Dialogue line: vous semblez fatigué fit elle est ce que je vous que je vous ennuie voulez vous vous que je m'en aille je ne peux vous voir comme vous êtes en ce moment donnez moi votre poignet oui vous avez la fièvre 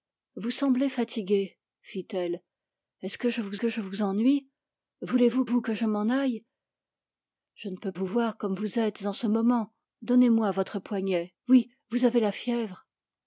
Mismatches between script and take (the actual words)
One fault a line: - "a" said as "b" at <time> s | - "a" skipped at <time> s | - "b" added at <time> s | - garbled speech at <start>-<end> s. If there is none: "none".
none